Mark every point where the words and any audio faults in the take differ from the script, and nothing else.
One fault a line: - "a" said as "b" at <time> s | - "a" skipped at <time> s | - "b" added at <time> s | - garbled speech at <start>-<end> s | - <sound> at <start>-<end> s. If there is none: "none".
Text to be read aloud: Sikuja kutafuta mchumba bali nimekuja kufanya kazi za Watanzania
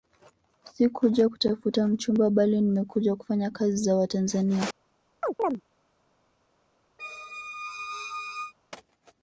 - chirp at 5.2-5.6 s
- squeak at 7.0-8.5 s